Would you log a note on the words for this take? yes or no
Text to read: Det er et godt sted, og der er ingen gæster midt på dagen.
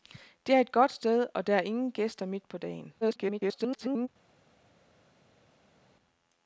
yes